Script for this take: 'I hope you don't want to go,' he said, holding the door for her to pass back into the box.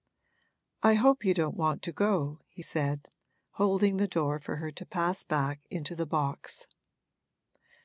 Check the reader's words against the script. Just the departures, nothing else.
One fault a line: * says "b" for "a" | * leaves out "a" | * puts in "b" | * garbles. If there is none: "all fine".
all fine